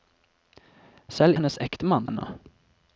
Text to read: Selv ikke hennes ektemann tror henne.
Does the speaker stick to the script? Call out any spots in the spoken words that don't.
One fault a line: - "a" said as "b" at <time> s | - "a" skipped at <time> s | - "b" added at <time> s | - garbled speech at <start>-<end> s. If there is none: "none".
- "ikke" skipped at 1.4 s
- "tror" skipped at 2.1 s